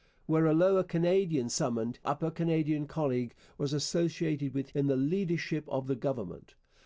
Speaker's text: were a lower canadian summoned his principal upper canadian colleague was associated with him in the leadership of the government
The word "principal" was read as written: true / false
false